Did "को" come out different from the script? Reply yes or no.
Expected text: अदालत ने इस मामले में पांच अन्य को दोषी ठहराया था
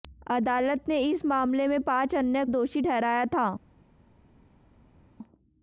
yes